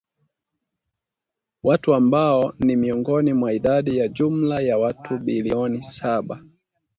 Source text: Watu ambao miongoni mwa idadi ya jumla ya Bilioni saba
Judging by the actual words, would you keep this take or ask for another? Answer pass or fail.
fail